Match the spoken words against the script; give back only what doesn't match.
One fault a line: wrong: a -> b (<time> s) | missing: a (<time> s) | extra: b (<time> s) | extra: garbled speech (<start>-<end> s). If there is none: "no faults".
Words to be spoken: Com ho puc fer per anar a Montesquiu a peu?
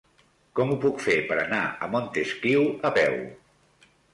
no faults